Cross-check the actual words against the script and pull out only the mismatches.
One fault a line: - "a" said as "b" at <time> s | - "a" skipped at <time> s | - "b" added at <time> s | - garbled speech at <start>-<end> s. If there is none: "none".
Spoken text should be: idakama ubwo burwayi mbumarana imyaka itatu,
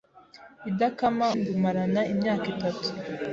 - "ubwo burwayi" skipped at 1.3 s